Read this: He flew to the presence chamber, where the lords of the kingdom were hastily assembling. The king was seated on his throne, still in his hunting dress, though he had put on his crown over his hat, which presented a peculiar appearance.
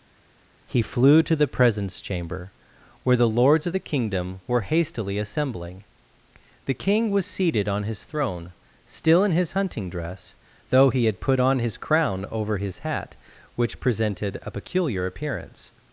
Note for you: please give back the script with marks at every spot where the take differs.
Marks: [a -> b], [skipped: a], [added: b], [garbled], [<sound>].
He flew to the presence chamber, where the lords of the kingdom were hastily assembling. The king was seated on his throne, still in his hunting dress, though he had put on his crown over his hat, which presented a peculiar appearance.